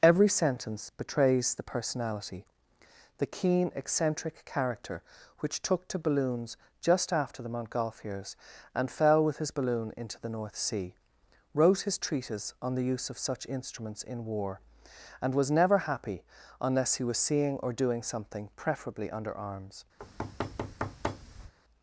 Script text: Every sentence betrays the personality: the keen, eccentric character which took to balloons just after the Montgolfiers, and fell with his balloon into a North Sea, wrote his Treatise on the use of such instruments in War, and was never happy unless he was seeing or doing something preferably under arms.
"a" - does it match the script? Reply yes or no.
no